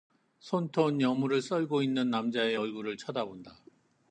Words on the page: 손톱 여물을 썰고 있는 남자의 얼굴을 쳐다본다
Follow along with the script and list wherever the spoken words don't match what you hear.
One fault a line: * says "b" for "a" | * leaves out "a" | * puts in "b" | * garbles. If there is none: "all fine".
all fine